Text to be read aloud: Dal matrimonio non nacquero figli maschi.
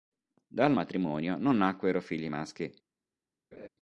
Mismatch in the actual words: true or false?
false